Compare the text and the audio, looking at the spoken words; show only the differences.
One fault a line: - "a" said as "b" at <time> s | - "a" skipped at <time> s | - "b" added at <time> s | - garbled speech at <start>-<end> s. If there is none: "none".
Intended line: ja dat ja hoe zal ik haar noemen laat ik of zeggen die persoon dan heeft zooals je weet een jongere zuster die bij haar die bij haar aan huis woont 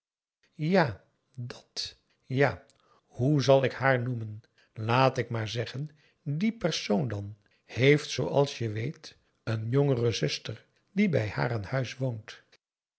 - "of" said as "maar" at 5.3 s
- "die bij haar" skipped at 11.5 s